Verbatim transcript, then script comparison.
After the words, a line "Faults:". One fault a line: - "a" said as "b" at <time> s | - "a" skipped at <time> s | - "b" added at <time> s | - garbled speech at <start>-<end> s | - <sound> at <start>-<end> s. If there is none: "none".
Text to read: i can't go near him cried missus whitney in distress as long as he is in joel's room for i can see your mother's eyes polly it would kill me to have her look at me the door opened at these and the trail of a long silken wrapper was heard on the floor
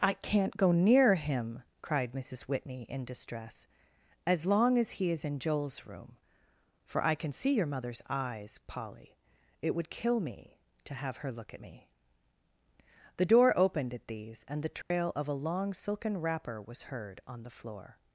i can't go near him cried missus whitney in distress as long as he is in joel's room for i can see your mother's eyes polly it would kill me to have her look at me the door opened at these and the trail of a long silken wrapper was heard on the floor
Faults:
- dropout at 14.8-14.9 s